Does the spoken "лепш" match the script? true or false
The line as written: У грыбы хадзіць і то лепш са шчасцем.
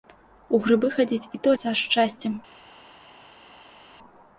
false